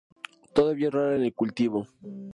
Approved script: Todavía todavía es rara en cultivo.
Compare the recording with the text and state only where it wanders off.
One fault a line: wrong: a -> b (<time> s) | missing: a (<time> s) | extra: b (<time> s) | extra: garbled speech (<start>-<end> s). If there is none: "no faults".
missing: todavía (0.9 s)
extra: el (1.2 s)